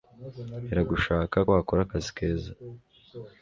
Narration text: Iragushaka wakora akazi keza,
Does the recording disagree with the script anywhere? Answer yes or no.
no